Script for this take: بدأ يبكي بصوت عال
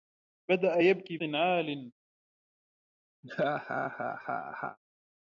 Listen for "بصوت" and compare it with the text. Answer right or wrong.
wrong